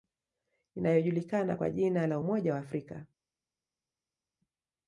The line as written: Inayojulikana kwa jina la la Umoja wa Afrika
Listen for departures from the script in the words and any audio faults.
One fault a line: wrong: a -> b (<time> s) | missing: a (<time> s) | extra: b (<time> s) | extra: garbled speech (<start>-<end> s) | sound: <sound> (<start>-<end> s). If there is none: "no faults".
missing: la (2.2 s)